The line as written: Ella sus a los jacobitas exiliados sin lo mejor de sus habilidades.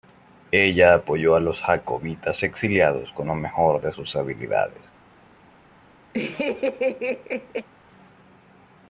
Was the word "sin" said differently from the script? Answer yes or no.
yes